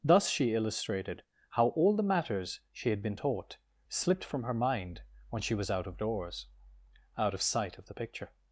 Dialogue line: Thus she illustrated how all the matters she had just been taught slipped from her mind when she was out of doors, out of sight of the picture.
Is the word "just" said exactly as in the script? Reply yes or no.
no